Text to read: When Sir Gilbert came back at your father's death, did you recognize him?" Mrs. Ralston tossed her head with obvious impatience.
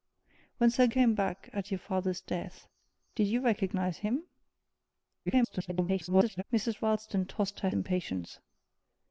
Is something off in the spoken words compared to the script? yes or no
yes